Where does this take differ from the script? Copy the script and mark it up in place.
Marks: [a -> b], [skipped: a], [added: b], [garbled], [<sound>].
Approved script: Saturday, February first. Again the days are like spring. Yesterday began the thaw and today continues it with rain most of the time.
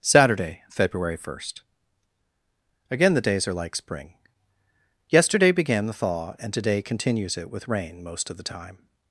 Saturday, February first. Again the days are like spring. Yesterday began the thaw and today continues it with rain most of the time.